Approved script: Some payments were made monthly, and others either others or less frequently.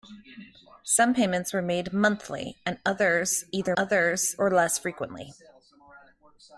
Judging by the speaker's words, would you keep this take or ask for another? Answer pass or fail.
pass